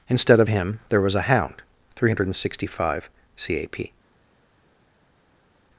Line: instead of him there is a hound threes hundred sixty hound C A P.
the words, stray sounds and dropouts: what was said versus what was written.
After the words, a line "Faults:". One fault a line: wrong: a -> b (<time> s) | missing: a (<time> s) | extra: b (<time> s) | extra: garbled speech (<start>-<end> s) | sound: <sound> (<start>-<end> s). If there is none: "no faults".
instead of him there was a hound three hundred sixty five C A P.
Faults:
wrong: is -> was (1.0 s)
wrong: threes -> three (2.0 s)
wrong: hound -> five (2.8 s)